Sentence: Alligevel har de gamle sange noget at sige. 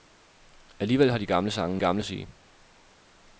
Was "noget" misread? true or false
true